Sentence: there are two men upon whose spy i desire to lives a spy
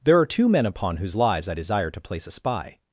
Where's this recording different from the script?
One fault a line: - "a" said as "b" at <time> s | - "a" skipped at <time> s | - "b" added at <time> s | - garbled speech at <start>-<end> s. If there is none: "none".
- "spy" said as "lives" at 1.1 s
- "lives" said as "place" at 2.0 s